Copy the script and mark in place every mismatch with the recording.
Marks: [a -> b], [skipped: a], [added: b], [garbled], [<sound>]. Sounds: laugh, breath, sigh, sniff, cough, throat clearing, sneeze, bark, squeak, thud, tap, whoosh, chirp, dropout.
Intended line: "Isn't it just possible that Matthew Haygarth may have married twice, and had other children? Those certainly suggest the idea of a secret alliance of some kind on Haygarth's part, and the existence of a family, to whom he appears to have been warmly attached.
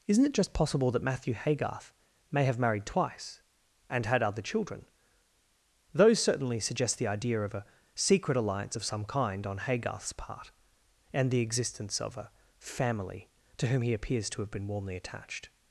"Isn't it just possible that Matthew Haygarth may have married twice, and had other children? Those certainly suggest the idea of a secret alliance of some kind on Haygarth's part, and the existence of a family, to whom he appears to have been warmly attached.